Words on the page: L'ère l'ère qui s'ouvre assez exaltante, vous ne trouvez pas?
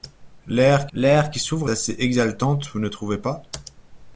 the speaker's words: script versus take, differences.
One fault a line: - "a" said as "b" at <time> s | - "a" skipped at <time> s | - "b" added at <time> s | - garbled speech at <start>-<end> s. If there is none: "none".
none